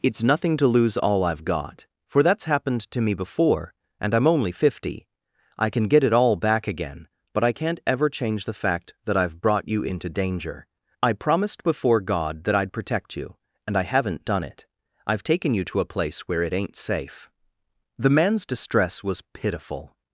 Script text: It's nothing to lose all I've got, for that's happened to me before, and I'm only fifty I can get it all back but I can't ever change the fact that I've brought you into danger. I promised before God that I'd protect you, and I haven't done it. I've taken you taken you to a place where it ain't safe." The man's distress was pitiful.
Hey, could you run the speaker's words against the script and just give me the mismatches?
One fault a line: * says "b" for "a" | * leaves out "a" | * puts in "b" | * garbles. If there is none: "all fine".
* puts in "again"
* leaves out "taken you"